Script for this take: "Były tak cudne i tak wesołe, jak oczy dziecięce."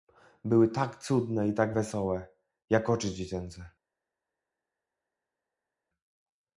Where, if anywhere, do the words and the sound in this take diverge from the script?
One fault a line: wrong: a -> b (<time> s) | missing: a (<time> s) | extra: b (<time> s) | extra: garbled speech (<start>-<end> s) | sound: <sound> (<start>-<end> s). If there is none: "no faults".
no faults